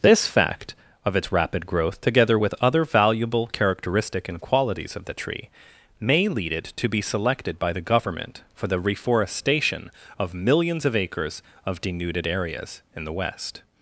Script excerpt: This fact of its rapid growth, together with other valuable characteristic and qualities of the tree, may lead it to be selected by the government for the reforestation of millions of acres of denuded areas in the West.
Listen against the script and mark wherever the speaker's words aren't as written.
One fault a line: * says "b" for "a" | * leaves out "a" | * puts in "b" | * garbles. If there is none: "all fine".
all fine